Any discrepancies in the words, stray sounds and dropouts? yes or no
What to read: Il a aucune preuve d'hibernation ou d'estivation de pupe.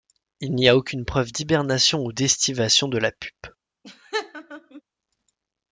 yes